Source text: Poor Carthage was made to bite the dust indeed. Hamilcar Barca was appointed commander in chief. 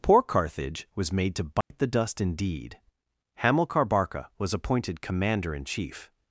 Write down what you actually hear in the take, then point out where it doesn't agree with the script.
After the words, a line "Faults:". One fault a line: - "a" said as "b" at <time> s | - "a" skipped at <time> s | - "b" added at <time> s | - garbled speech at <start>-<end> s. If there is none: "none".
Poor Carthage was made to bite the dust indeed. Hamilcar Barca was appointed commander in chief.
Faults:
none